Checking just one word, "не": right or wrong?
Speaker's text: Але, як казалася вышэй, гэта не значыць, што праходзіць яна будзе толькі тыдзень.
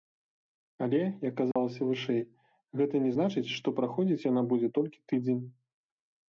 right